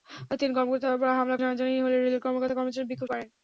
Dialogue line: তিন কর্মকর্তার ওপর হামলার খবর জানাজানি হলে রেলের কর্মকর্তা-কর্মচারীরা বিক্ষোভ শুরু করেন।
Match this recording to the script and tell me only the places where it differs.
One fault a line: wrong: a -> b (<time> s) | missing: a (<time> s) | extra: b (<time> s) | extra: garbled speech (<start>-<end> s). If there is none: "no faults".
missing: খবর (1.4 s)
missing: শুরু (3.1 s)